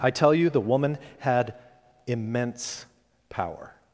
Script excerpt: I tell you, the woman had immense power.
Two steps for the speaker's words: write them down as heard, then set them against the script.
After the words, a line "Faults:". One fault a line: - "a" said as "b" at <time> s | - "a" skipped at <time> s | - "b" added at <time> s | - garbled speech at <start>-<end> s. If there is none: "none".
I tell you, the woman had immense power.
Faults:
none